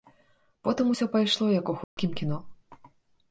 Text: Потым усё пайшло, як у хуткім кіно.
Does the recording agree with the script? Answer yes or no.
yes